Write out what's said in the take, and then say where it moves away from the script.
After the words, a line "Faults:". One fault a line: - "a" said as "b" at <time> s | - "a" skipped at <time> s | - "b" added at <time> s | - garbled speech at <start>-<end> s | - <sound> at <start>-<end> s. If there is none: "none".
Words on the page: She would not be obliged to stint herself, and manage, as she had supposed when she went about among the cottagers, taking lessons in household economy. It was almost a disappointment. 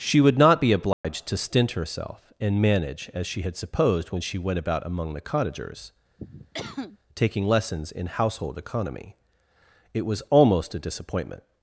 She would not be obliged to stint herself, and manage, as she had supposed when she went about among the cottagers, taking lessons in household economy. It was almost a disappointment.
Faults:
- dropout at 0.9-1.0 s
- cough at 6.2-7.0 s